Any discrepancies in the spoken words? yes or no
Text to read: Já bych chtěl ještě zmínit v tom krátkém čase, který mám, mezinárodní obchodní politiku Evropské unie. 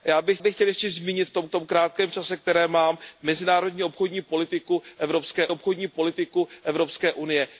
yes